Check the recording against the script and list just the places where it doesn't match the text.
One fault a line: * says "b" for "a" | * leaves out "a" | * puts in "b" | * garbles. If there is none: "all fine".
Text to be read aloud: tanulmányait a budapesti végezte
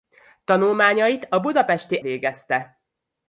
all fine